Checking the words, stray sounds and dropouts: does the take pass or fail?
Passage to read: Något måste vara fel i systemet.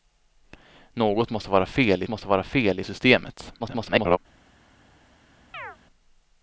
fail